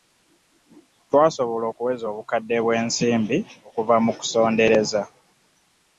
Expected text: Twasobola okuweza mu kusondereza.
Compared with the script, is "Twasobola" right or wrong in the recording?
right